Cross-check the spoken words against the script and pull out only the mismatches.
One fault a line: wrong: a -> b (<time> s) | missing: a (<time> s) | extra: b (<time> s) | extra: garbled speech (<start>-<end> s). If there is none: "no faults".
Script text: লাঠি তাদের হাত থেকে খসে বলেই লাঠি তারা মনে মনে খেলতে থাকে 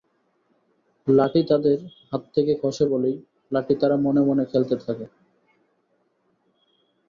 no faults